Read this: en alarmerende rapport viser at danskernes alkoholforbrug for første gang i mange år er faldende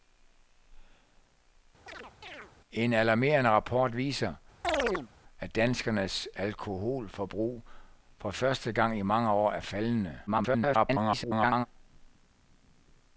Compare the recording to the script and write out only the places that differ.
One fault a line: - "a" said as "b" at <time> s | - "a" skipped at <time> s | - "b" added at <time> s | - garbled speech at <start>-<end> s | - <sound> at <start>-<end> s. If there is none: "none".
- chirp at 1.9-2.5 s
- chirp at 4.6-5.1 s
- garbled speech at 10.3-11.7 s